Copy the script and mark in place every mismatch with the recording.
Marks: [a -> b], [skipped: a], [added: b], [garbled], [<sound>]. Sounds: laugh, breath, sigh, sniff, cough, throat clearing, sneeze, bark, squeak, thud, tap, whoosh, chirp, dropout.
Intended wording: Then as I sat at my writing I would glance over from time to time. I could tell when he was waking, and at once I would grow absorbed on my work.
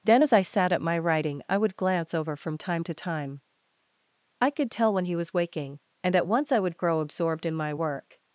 Then as I sat at my writing I would glance over from time to time. I could tell when he was waking, and at once I would grow absorbed [on -> in] my work.